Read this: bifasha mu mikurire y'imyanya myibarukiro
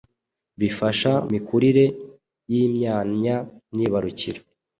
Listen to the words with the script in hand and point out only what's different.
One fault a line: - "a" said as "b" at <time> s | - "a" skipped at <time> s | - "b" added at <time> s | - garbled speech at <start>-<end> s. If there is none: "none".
- "mu" skipped at 1.1 s